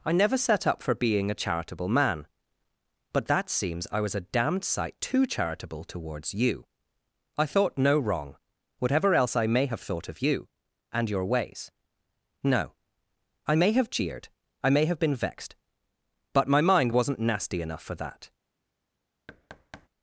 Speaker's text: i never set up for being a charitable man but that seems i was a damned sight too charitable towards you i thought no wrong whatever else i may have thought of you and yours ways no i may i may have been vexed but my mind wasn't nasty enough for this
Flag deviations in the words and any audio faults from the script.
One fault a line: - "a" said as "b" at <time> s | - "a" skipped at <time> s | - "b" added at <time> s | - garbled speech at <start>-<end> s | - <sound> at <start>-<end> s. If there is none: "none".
- "yours" said as "your" at 11.1 s
- "have jeered" added at 13.7 s
- "this" said as "that" at 18.0 s
- thud at 19.3-19.9 s